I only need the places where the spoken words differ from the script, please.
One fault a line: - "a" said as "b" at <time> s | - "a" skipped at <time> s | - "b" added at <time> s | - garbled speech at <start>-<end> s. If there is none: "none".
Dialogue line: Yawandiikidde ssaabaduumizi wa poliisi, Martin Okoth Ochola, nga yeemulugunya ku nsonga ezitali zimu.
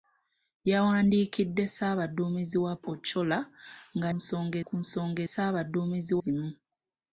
- "poliisi Martin Okoth" skipped at 2.7 s
- "yeemulugunya" said as "nsonga" at 4.2 s
- "ezitali" said as "ssaabaduumizi" at 5.3 s